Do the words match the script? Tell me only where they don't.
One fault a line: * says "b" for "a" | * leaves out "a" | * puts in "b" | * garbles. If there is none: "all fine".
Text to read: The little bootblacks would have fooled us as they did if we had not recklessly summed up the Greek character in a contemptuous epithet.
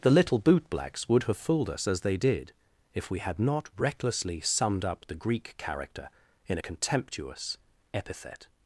all fine